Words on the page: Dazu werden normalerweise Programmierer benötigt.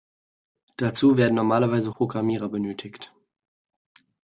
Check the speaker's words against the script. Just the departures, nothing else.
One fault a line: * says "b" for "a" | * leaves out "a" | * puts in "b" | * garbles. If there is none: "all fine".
all fine